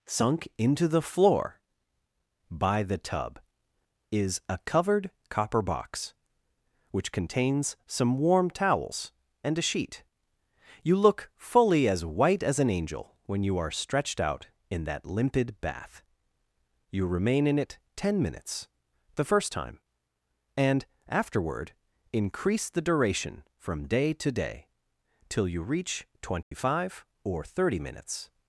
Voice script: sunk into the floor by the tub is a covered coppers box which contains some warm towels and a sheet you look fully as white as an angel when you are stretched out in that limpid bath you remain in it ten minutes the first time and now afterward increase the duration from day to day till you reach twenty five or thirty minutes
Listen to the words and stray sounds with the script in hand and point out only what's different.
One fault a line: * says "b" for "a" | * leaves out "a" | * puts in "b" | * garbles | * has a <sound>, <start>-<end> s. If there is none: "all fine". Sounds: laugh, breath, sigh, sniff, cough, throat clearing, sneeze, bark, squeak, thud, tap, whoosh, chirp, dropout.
* says "copper" for "coppers"
* leaves out "now"
* has a dropout, 26.4-26.5 s